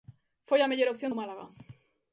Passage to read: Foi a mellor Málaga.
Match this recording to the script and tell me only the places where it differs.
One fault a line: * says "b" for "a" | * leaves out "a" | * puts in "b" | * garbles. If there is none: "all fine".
* puts in "opción do"